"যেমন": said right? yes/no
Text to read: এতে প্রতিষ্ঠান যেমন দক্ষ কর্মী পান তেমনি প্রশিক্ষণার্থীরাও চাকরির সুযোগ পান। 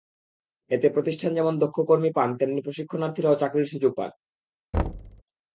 yes